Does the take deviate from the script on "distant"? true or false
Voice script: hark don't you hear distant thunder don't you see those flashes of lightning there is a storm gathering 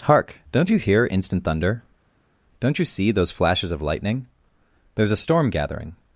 true